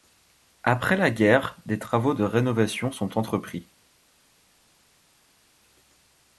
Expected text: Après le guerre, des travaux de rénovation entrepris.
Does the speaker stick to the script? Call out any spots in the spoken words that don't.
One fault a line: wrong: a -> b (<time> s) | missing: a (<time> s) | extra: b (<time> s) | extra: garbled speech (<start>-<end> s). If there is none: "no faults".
wrong: le -> la (1.0 s)
extra: sont (2.9 s)